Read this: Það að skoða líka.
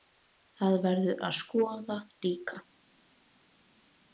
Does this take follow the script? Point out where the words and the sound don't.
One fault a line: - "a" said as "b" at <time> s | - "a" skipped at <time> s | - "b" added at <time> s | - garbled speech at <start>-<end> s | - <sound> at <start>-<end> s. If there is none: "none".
- "verður" added at 0.8 s